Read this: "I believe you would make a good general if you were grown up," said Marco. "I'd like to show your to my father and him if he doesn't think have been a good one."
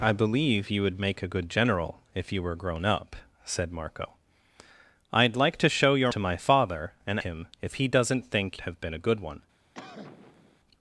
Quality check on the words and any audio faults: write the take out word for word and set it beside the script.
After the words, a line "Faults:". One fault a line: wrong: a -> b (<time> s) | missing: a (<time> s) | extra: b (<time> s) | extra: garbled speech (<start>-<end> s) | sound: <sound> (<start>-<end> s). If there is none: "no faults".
"I believe you would make a good general if you were grown up," said Marco. "I'd like to show your to my father and him if he doesn't think have been a good one."
Faults:
sound: cough (9.7-10.6 s)